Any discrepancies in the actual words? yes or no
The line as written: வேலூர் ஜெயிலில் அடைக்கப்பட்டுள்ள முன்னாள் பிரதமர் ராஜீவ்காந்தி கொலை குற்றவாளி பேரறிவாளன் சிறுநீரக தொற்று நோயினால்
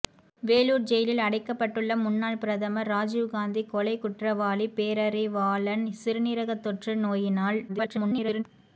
yes